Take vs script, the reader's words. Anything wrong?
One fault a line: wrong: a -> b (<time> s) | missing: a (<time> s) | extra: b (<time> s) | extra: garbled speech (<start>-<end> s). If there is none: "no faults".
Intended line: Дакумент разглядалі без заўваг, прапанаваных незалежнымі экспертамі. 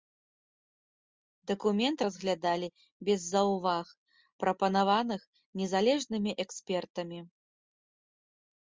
no faults